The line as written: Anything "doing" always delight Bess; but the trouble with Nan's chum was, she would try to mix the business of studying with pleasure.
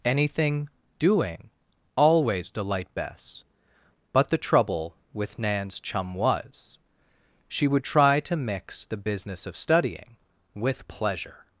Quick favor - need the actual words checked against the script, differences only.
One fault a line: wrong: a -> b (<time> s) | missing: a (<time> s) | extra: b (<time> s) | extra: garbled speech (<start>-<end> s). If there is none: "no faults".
no faults